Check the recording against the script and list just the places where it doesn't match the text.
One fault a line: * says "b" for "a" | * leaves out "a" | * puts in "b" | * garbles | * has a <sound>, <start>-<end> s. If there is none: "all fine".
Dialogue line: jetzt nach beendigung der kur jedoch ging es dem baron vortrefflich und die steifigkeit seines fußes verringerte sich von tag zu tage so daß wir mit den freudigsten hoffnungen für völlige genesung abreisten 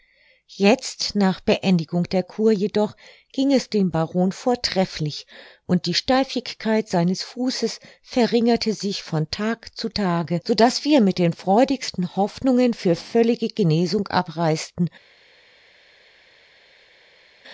all fine